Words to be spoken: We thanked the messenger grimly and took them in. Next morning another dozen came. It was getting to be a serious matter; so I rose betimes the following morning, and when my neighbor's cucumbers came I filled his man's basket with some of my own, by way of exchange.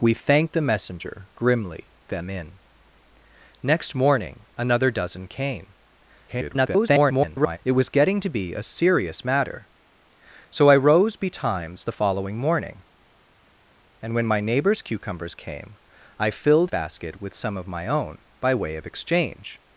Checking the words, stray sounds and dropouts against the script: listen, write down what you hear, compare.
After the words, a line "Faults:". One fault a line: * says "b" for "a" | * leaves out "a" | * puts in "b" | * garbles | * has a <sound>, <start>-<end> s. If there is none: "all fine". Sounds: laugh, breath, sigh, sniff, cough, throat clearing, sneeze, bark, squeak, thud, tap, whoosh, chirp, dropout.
We thanked the messenger grimly them in. Next morning another dozen came. [garbled] It was getting to be a serious matter; so I rose betimes the following morning, and when my neighbor's cucumbers came I filled basket with some of my own, by way of exchange.
Faults:
* leaves out "and took"
* garbles
* leaves out "his man's"